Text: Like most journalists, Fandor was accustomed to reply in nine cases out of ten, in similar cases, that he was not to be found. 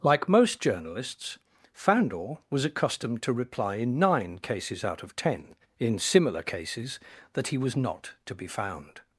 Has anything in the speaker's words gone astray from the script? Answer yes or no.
no